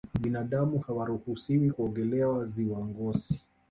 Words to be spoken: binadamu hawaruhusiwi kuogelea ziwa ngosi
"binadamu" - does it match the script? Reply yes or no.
yes